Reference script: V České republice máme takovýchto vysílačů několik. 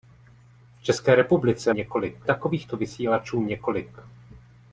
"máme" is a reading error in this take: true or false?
true